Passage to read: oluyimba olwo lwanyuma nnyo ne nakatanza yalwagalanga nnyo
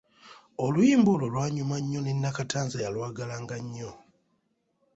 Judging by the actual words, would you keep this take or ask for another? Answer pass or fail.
pass